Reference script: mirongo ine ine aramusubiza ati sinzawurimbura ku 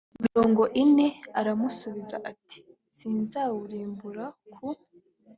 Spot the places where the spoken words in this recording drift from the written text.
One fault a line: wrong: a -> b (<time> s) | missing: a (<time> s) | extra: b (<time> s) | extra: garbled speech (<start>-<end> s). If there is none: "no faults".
missing: ine (1.1 s)